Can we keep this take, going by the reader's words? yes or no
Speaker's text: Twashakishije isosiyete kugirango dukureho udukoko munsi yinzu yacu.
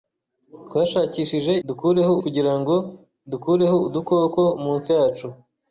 no